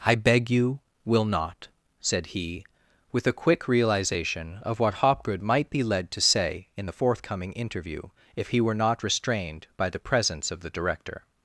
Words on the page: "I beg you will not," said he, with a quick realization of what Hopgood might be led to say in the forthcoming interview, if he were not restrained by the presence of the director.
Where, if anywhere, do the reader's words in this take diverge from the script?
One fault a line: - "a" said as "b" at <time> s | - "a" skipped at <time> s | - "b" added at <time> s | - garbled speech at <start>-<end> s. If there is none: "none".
none